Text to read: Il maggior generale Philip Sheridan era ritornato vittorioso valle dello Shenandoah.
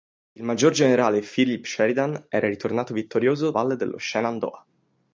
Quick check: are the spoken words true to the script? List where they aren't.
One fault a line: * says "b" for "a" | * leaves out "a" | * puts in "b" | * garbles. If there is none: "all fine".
all fine